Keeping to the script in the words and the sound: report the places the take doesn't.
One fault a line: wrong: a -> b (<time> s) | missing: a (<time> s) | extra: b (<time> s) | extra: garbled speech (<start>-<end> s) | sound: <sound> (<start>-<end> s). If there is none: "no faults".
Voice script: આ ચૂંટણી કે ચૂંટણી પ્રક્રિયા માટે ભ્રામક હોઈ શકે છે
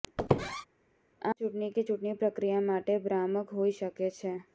sound: squeak (0.2-0.7 s)